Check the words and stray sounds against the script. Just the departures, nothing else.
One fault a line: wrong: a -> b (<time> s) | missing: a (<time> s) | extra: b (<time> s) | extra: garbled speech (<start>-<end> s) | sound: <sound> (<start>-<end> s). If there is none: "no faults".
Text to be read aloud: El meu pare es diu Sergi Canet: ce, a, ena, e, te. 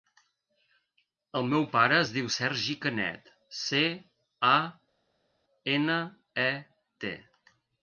no faults